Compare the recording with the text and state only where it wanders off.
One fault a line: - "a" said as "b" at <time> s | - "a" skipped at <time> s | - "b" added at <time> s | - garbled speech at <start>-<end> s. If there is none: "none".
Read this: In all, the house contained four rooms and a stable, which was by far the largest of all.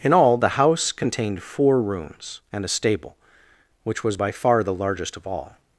none